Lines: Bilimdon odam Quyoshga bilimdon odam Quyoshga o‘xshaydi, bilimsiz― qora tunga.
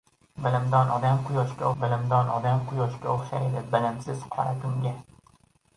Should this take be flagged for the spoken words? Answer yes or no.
no